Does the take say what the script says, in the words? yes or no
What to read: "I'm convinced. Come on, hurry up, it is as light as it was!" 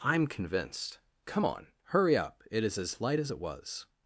yes